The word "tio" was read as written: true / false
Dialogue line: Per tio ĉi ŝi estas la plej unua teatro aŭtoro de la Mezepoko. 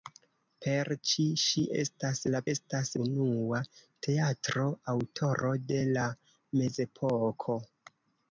false